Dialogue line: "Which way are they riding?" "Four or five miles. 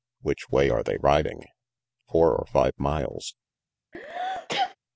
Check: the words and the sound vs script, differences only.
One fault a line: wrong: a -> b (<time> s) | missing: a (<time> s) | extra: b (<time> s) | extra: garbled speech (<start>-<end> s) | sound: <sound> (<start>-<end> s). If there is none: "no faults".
sound: sneeze (3.9-4.8 s)